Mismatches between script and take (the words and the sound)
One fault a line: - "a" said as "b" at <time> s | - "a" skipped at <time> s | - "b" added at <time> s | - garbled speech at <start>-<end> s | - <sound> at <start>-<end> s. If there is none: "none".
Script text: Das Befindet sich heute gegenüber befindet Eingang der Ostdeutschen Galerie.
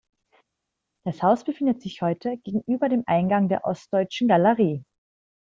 - "Haus" added at 1.2 s
- "befindet" said as "dem" at 2.9 s